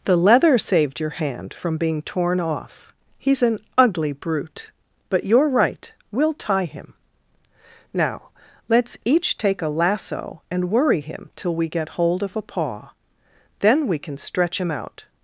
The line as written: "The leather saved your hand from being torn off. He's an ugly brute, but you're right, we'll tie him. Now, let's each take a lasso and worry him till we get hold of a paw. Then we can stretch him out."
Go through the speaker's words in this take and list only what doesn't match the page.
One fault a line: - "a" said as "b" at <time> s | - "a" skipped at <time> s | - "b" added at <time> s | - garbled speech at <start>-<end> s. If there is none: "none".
none